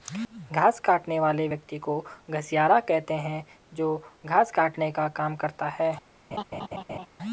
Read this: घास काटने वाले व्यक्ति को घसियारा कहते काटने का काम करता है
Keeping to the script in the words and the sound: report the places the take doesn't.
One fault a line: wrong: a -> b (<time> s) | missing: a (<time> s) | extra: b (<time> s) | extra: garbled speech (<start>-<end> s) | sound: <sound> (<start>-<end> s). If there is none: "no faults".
extra: हैं जो घास (3.2 s)
sound: laugh (6.3-7.1 s)